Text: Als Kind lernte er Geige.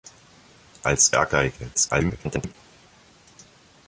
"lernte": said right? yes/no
no